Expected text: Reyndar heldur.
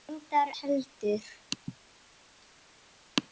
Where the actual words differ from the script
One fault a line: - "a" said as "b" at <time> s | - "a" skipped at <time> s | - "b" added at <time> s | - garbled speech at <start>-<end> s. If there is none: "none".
none